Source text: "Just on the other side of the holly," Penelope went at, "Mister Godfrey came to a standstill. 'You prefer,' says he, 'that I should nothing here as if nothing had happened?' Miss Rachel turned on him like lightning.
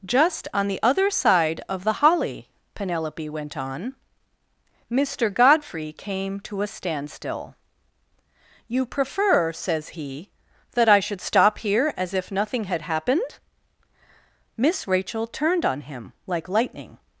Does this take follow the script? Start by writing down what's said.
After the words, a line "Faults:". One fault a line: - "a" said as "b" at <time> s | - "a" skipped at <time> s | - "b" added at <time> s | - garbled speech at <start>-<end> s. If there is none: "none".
"Just on the other side of the holly," Penelope went on, "Mister Godfrey came to a standstill. 'You prefer,' says he, 'that I should stop here as if nothing had happened?' Miss Rachel turned on him like lightning.
Faults:
- "at" said as "on" at 3.5 s
- "nothing" said as "stop" at 11.2 s